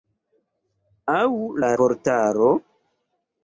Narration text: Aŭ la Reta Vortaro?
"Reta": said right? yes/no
no